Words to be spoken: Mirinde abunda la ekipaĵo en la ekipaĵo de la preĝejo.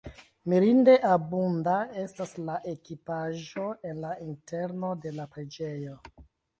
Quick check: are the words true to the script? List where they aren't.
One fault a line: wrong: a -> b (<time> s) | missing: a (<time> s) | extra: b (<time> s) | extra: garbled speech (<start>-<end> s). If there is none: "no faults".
extra: estas (2.0 s)
wrong: ekipaĵo -> interno (4.3 s)